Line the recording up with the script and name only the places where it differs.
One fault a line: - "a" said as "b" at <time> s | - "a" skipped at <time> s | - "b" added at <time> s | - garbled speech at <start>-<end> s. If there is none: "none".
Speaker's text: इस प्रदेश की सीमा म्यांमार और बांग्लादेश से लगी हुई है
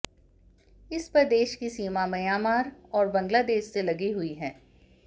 none